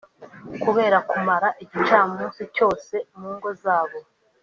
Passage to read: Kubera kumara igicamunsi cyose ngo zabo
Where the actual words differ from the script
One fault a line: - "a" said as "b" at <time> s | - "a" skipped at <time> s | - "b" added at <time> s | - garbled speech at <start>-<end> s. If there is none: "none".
- "mu" added at 3.2 s